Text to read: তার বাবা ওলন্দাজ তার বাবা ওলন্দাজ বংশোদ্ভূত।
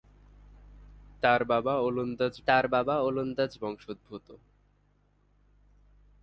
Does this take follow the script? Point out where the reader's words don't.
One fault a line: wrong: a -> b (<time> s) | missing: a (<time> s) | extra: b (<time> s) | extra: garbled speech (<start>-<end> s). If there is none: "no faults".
no faults